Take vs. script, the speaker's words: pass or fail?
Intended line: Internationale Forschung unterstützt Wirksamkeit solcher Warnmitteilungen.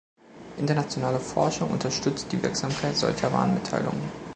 fail